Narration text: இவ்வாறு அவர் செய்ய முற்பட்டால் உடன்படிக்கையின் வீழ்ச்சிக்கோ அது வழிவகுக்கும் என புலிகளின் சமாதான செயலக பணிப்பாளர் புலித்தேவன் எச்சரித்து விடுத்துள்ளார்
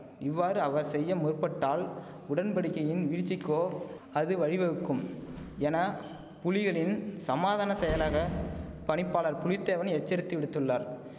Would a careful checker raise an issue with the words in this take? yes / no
no